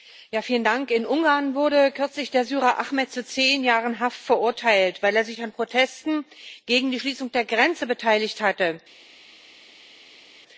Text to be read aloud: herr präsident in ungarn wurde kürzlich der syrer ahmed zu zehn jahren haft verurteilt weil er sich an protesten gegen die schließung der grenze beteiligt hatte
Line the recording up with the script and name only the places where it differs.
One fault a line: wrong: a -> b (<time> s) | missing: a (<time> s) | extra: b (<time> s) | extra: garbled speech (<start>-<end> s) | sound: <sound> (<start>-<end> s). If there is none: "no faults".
no faults